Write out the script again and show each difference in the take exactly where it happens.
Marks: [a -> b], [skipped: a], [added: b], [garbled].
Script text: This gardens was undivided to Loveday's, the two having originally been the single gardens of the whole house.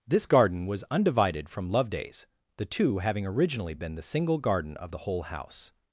This [gardens -> garden] was undivided [to -> from] Loveday's, the two having originally been the single [gardens -> garden] of the whole house.